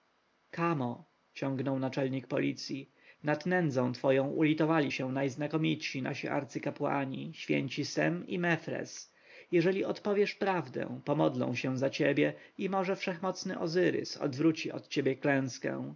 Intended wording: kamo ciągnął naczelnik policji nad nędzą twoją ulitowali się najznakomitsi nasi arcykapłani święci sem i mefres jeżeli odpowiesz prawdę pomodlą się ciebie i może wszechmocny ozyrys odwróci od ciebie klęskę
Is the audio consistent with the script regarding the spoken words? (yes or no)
no